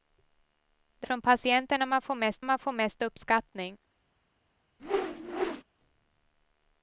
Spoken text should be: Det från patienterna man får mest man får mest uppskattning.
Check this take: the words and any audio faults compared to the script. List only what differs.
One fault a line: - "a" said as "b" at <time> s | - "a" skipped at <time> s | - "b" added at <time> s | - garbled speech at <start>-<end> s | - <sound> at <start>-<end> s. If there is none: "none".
- whoosh at 4.8-5.6 s